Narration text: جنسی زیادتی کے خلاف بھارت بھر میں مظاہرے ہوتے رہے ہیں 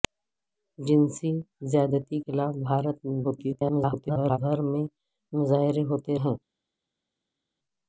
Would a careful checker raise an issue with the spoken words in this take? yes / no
yes